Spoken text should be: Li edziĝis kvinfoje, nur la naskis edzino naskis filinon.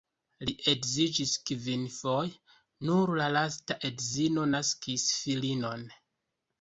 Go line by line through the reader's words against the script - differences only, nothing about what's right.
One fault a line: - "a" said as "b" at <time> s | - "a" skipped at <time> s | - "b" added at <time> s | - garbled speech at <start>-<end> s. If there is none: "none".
- "naskis" said as "lasta" at 3.4 s